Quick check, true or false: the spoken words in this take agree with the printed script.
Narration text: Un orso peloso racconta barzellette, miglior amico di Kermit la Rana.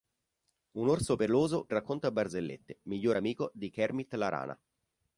true